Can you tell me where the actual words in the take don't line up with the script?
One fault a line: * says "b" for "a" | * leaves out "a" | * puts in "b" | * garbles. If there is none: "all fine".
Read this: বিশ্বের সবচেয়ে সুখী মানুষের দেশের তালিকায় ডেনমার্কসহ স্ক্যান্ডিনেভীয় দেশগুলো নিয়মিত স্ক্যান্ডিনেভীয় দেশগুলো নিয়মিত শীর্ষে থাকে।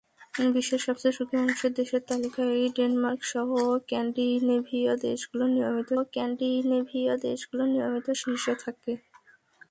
all fine